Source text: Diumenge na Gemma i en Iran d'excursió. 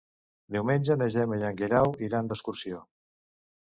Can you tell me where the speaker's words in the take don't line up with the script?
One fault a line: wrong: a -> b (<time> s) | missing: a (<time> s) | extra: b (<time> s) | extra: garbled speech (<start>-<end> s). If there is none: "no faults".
extra: Guerau (1.6 s)